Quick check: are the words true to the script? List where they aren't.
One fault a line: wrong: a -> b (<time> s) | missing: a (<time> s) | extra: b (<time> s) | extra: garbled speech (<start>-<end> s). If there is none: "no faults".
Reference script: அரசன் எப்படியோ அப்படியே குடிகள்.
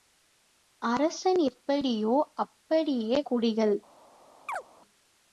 no faults